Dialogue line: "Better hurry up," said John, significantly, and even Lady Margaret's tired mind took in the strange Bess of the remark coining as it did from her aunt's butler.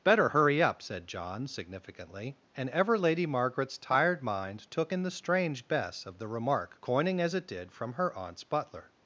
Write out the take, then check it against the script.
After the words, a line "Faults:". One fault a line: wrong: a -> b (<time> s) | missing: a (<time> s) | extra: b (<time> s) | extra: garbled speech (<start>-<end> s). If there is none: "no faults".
"Better hurry up," said John, significantly, and ever Lady Margaret's tired mind took in the strange Bess of the remark coining as it did from her aunt's butler.
Faults:
wrong: even -> ever (2.7 s)